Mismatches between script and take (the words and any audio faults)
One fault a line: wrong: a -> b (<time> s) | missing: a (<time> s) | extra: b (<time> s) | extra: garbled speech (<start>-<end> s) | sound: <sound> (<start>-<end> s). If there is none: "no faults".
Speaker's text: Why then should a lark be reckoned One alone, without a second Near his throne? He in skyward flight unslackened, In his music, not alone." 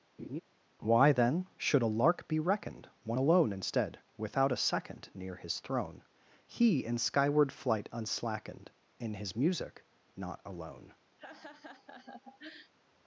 sound: laugh (0.2-0.4 s)
extra: instead (3.5 s)
sound: laugh (11.2-12.7 s)